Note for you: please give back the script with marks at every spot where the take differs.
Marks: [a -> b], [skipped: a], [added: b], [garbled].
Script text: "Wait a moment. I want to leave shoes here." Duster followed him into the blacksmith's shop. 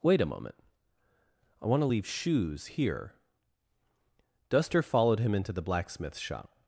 "Wait a moment. I want to leave shoes here." Duster followed him into the blacksmith's shop.